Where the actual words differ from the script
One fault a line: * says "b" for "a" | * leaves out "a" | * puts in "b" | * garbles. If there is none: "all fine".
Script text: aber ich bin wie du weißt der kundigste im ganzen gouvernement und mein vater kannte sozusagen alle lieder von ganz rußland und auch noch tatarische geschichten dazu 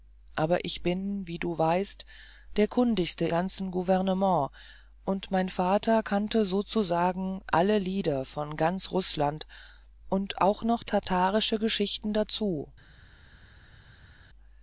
* leaves out "im"